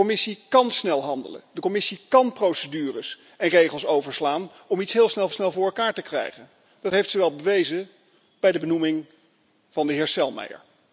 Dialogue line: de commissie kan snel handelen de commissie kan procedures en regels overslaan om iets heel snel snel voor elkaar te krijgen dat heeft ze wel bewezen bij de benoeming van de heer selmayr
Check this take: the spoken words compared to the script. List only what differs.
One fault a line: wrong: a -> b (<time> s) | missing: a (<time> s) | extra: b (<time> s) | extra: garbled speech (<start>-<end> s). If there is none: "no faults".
no faults